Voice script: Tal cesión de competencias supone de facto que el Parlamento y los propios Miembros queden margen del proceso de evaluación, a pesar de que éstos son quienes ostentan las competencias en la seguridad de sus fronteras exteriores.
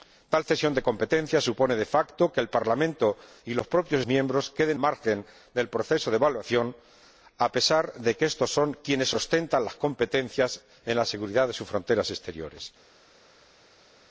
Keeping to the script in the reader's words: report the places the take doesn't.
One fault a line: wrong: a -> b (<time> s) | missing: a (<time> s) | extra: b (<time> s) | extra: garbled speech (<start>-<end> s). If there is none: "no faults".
no faults